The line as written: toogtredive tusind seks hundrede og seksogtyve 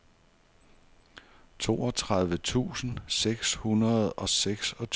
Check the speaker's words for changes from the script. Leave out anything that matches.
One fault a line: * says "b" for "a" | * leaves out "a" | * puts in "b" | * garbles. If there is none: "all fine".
all fine